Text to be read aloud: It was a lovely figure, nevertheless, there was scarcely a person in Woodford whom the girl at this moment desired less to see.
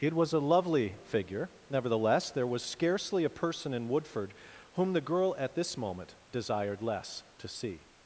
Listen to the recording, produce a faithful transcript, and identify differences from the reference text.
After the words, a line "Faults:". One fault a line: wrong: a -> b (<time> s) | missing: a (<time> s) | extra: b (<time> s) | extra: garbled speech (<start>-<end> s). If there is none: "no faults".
It was a lovely figure, nevertheless, there was scarcely a person in Woodford whom the girl at this moment desired less to see.
Faults:
no faults